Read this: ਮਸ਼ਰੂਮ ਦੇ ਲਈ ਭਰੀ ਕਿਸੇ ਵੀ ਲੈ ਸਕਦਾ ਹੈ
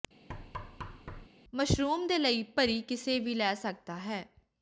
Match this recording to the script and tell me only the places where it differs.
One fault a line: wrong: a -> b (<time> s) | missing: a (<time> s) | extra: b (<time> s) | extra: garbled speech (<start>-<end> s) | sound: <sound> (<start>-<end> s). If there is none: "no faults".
sound: thud (0.3-1.3 s)